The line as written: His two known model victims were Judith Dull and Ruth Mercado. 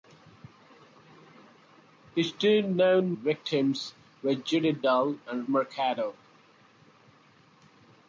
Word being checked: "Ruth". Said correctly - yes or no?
no